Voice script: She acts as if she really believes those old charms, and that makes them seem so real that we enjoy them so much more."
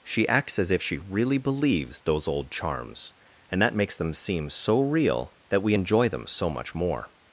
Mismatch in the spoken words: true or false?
false